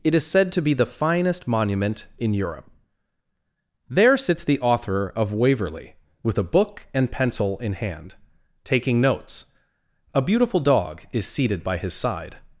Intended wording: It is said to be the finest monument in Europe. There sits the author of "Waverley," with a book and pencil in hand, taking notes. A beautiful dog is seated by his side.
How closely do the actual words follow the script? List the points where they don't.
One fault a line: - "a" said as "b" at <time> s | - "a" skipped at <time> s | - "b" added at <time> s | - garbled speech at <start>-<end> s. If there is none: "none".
none